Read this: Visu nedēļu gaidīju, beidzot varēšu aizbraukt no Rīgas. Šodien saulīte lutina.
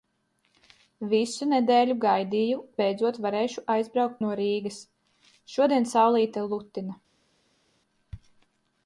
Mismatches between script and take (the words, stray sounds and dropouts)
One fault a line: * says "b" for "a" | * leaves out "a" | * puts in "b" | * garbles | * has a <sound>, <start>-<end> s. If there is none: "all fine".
all fine